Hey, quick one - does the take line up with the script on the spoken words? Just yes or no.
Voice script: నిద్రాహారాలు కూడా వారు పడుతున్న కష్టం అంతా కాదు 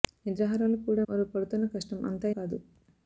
yes